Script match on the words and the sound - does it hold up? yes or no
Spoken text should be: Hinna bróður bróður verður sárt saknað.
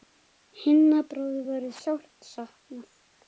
no